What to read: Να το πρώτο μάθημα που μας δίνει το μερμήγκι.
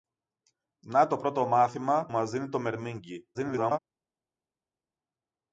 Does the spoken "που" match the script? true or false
false